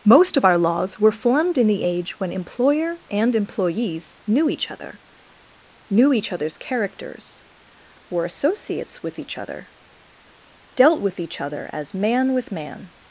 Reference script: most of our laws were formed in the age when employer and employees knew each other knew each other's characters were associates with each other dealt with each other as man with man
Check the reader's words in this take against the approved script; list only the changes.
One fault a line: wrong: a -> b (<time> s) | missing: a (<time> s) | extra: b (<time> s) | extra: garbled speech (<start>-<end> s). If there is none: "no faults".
no faults